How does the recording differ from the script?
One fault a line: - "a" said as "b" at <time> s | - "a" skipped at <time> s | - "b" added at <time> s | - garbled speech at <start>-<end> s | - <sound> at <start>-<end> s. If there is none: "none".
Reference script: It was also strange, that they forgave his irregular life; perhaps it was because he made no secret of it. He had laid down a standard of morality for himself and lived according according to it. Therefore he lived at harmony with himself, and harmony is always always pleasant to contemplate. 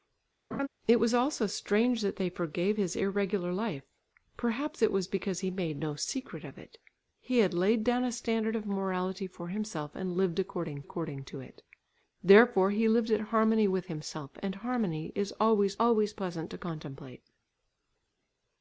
- laugh at 0.5-0.7 s